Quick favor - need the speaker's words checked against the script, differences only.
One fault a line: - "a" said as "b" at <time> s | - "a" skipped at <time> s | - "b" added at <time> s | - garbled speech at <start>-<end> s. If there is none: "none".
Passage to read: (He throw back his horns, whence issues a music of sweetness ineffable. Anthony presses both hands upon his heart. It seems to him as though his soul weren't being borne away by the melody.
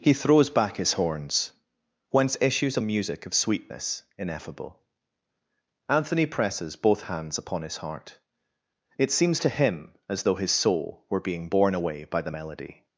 - "throw" said as "throws" at 0.1 s
- "weren't" said as "were" at 11.1 s